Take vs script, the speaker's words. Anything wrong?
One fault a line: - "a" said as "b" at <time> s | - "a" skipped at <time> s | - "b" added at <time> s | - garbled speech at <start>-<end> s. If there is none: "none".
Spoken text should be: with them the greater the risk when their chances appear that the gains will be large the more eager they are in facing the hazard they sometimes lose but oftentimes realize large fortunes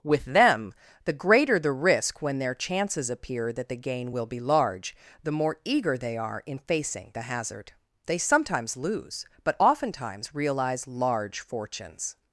- "gains" said as "gain" at 3.8 s